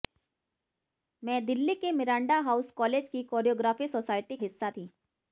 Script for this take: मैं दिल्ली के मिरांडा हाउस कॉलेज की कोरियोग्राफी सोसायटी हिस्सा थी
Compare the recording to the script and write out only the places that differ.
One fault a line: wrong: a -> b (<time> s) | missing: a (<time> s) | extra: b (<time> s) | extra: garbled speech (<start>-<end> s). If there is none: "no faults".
no faults